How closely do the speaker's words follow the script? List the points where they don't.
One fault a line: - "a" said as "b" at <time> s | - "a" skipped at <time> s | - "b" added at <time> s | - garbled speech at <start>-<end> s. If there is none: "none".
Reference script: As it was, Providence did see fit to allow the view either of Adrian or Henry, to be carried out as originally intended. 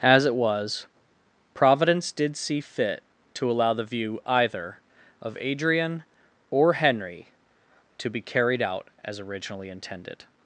none